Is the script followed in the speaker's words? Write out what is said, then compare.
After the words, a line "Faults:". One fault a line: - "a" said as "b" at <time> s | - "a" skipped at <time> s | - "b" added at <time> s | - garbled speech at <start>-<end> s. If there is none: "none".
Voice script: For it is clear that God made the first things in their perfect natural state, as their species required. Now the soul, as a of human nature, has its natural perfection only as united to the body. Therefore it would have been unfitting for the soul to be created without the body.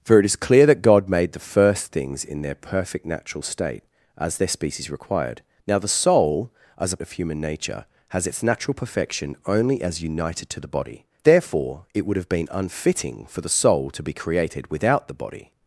For it is clear that God made the first things in their perfect natural state, as their species required. Now the soul, as a of human nature, has its natural perfection only as united to the body. Therefore it would have been unfitting for the soul to be created without the body.
Faults:
none